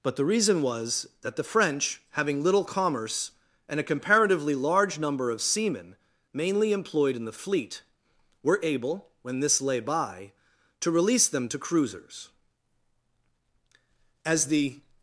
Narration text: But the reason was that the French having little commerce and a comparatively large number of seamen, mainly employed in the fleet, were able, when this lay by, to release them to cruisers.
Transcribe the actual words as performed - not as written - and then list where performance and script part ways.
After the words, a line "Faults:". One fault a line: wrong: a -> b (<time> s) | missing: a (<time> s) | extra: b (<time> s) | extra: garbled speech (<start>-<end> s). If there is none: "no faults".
But the reason was that the French having little commerce and a comparatively large number of seamen, mainly employed in the fleet, were able, when this lay by, to release them to cruisers. As the
Faults:
extra: As the (14.2 s)